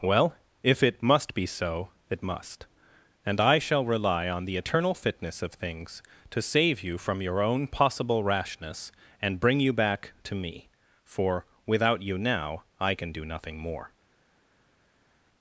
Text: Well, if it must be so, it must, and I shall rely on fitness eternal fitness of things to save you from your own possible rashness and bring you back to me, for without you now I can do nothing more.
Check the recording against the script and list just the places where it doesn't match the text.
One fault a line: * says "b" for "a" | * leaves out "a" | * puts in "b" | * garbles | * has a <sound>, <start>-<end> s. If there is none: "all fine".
* says "the" for "fitness"